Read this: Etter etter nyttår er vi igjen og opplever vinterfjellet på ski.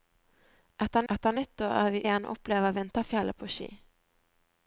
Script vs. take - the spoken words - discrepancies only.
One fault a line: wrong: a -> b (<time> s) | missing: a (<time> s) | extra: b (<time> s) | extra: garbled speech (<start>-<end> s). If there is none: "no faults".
no faults